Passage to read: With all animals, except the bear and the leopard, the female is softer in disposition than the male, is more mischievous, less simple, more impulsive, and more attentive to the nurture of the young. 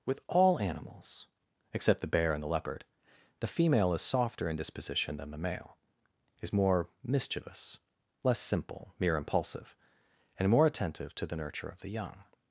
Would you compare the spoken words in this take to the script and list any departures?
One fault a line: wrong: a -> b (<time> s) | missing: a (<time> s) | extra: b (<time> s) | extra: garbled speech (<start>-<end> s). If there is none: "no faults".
wrong: more -> mere (9.0 s)